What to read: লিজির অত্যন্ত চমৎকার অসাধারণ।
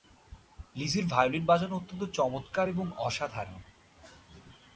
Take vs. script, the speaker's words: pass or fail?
fail